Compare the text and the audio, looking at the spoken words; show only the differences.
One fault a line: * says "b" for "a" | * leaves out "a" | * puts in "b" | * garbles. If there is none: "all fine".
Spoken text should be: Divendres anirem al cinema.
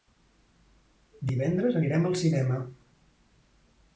all fine